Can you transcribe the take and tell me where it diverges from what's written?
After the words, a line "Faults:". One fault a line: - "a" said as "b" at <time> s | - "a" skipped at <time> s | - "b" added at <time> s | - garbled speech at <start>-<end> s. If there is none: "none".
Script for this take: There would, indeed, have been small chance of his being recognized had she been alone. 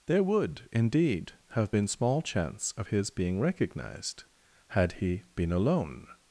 There would, indeed, have been small chance of his being recognized had he been alone.
Faults:
- "she" said as "he" at 4.9 s